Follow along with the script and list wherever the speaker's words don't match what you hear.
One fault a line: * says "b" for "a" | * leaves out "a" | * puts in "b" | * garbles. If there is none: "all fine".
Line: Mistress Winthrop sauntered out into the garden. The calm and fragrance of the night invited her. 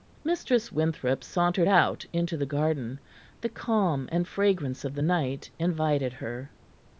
all fine